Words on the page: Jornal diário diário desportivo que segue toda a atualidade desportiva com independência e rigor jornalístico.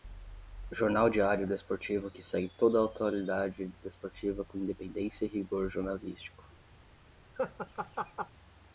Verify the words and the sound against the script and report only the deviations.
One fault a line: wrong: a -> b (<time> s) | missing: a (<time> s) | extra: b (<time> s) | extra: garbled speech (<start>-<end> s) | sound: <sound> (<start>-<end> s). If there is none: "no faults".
missing: diário (1.4 s)
sound: laugh (7.4-8.3 s)